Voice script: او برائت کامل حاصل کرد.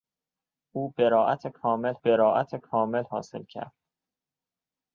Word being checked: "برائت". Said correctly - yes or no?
yes